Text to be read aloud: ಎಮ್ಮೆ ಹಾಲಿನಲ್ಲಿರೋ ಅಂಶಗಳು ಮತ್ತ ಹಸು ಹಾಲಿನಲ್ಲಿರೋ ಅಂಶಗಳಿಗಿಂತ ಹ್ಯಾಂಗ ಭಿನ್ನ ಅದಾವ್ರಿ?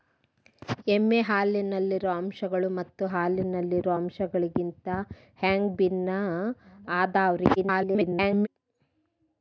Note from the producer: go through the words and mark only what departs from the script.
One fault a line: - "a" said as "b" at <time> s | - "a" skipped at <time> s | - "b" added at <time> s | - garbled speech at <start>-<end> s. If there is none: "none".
- "ಹಸು" skipped at 3.1 s
- garbled speech at 7.6-8.5 s